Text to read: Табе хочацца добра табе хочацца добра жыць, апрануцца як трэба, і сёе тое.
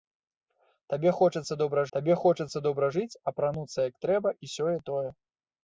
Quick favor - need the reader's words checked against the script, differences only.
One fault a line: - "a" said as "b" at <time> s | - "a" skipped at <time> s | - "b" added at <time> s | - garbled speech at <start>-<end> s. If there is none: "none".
none